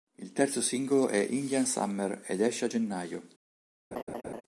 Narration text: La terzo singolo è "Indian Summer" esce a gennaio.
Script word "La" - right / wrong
wrong